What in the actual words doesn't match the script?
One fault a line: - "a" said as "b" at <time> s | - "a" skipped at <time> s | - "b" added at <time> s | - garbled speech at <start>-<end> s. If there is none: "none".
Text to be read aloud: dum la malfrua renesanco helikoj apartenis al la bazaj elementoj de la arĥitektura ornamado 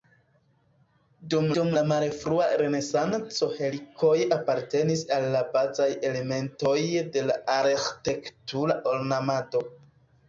- "dum" added at 1.6 s